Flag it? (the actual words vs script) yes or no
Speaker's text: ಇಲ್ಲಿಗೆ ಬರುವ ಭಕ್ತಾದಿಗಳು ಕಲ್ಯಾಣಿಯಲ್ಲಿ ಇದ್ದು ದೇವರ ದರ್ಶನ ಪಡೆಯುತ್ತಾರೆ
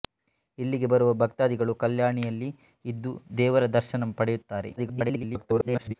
yes